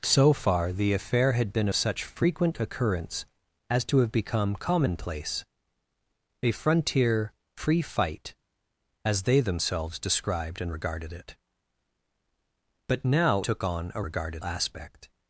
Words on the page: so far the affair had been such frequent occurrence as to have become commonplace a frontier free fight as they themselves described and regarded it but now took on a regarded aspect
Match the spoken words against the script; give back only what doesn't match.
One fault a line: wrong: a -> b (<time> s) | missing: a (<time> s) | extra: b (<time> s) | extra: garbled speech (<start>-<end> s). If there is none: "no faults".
no faults